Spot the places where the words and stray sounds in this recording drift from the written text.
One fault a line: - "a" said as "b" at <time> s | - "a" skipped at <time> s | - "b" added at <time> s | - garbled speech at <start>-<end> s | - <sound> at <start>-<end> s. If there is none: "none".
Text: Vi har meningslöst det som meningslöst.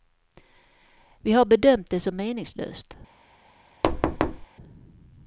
- "meningslöst" said as "bedömt" at 1.4 s
- thud at 3.8-4.5 s